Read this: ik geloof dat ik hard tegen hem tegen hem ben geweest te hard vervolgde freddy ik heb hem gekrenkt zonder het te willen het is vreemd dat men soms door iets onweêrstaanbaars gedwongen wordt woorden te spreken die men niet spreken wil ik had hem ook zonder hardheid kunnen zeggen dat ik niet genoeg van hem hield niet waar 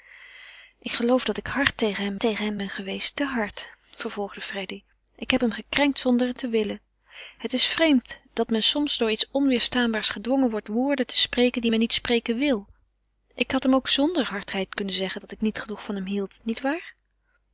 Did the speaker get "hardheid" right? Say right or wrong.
right